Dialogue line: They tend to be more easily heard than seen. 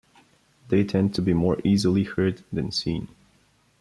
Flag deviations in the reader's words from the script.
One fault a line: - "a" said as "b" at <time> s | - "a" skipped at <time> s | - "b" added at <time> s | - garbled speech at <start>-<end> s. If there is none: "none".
none